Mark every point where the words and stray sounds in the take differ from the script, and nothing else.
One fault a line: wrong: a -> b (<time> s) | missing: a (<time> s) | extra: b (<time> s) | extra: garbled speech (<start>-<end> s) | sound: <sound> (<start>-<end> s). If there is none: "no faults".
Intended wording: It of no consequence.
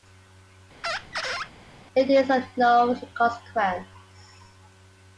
sound: squeak (0.8-1.5 s)
extra: is (2.1 s)